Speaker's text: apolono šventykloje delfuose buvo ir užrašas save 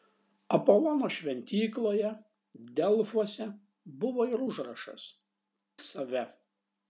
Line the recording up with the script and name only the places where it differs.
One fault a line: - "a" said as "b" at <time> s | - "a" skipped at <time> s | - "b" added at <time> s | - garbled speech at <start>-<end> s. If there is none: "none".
none